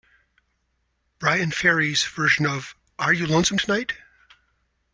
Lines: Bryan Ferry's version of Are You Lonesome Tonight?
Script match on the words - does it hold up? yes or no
yes